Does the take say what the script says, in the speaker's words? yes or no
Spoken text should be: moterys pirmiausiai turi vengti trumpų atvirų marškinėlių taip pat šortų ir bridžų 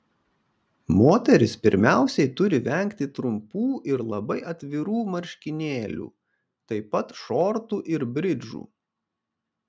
no